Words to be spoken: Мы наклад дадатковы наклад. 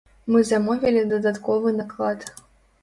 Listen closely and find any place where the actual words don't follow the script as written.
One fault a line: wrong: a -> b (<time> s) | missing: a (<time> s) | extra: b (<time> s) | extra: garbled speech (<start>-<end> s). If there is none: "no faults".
wrong: наклад -> замовілі (0.5 s)